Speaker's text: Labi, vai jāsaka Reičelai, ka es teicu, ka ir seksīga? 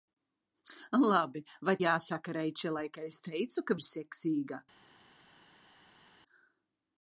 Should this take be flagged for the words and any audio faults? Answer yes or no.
no